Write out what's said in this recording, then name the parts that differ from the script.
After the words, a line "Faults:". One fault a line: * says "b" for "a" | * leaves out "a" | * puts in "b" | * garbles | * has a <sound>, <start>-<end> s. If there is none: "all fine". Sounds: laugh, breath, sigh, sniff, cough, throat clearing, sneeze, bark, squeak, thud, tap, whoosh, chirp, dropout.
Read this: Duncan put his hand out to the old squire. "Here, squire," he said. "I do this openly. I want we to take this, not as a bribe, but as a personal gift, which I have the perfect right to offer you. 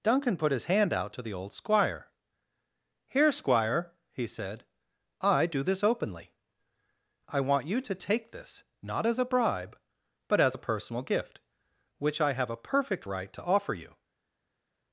Duncan put his hand out to the old squire. "Here, squire," he said. "I do this openly. I want you to take this, not as a bribe, but as a personal gift, which I have a perfect right to offer you.
Faults:
* says "you" for "we"
* says "a" for "the"